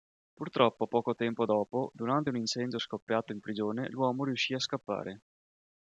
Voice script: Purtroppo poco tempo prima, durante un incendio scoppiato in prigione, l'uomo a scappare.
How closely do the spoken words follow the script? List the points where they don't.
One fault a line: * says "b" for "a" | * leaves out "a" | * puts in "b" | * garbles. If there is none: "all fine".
* says "dopo" for "prima"
* puts in "riuscì"